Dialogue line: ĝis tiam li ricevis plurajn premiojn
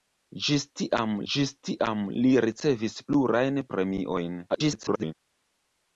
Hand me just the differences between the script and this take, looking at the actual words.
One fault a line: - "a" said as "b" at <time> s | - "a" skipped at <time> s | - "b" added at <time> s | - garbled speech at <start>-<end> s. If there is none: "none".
- "ĝis tiam" added at 1.3 s
- garbled speech at 4.5-5.1 s